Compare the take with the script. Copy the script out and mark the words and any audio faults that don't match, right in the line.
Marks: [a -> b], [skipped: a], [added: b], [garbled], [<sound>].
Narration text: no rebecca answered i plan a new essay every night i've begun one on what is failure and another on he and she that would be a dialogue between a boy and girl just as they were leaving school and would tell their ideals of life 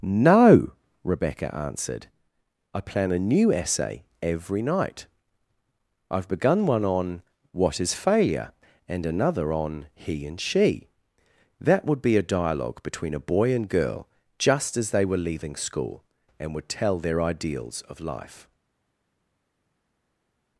no rebecca answered i plan a new essay every night i've begun one on what is failure and another on he and she that would be a dialogue between a boy and girl just as they were leaving school and would tell their ideals of life